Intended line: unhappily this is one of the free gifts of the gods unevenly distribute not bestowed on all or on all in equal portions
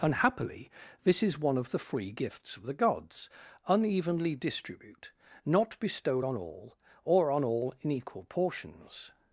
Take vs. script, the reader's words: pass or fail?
pass